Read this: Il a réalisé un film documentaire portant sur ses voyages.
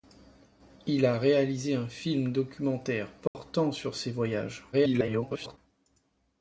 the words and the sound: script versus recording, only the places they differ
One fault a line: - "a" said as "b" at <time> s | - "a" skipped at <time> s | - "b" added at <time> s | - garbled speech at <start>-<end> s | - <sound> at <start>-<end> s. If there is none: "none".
- dropout at 3.3-3.3 s
- garbled speech at 4.7-5.6 s